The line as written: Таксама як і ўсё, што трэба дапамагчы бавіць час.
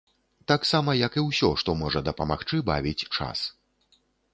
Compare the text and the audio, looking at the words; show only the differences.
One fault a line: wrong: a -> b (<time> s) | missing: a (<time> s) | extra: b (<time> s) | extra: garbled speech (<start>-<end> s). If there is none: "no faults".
wrong: трэба -> можа (1.8 s)